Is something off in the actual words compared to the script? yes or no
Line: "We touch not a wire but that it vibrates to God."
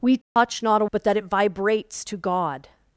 yes